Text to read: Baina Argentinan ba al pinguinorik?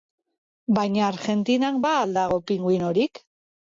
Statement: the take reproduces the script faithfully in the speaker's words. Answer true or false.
false